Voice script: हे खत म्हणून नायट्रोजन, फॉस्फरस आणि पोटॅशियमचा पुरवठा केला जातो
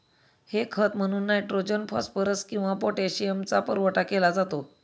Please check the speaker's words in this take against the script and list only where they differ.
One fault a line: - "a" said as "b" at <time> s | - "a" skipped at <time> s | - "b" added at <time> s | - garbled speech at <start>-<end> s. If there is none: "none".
- "आणि" said as "किंवा" at 2.4 s